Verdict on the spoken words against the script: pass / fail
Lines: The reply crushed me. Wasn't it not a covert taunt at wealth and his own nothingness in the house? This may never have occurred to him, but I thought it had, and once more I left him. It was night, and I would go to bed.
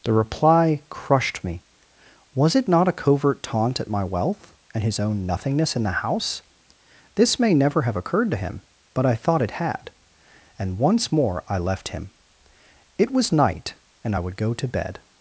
fail